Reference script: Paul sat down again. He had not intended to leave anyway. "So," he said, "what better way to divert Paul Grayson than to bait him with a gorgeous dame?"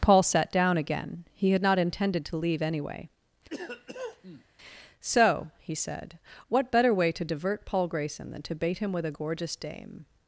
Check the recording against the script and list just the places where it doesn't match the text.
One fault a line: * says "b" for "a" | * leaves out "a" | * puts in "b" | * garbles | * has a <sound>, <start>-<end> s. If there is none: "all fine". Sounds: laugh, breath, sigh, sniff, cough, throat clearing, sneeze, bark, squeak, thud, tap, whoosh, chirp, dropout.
* has a cough, 3.5-4.4 s